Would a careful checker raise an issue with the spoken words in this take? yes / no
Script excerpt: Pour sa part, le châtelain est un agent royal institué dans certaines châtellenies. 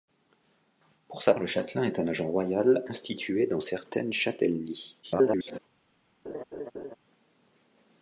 yes